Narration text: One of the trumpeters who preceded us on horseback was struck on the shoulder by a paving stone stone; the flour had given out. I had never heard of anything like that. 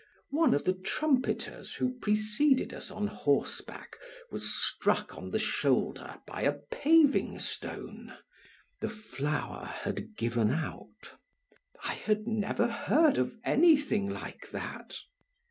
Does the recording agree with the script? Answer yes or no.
no